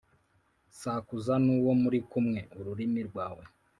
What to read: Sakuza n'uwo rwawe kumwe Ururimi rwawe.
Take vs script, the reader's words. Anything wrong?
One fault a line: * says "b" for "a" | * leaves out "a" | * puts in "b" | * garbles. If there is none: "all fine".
* says "muri" for "rwawe"